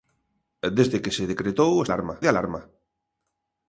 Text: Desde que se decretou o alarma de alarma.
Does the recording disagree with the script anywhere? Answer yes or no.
no